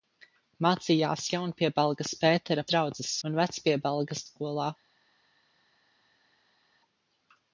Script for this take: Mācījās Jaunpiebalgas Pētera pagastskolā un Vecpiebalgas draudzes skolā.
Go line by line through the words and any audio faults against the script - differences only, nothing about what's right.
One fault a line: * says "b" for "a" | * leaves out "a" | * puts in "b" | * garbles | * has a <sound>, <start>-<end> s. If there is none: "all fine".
* says "draudzes" for "pagastskolā"
* leaves out "draudzes"